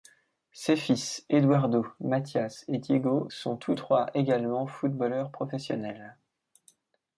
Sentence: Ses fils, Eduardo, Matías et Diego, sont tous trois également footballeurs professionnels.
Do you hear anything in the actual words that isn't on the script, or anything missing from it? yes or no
no